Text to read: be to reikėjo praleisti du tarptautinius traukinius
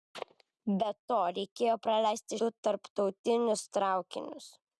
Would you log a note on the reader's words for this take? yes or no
no